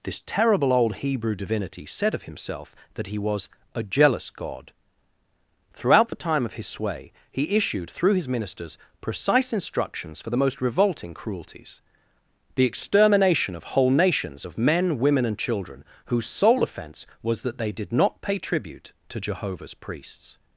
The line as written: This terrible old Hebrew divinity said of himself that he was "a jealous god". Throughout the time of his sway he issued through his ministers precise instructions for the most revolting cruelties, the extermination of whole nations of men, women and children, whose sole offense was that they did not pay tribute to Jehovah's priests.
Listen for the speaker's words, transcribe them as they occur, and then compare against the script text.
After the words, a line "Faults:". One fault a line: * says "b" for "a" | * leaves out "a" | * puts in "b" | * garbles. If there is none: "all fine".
This terrible old Hebrew divinity said of himself that he was "a jealous god". Throughout the time of his sway he issued through his ministers precise instructions for the most revolting cruelties, the extermination of whole nations of men, women and children, whose sole offense was that they did not pay tribute to Jehovah's priests.
Faults:
all fine